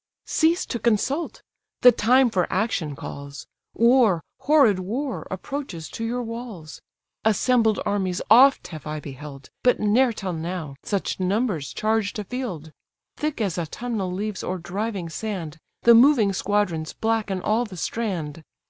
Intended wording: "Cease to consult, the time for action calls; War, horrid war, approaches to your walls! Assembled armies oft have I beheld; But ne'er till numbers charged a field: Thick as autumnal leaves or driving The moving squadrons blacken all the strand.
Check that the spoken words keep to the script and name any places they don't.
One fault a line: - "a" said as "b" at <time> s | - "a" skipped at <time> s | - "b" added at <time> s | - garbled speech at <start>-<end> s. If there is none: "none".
- "now such" added at 10.3 s
- "sand" added at 15.1 s